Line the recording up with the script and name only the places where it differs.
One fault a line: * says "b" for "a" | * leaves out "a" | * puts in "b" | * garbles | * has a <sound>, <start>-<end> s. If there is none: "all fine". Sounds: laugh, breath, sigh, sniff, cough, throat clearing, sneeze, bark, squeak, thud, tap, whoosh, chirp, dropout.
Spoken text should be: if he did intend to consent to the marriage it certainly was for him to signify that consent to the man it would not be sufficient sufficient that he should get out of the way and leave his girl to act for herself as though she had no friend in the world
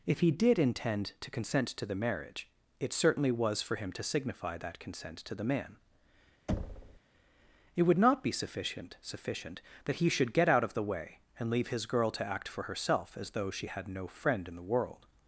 * has a thud, 6.5-7.0 s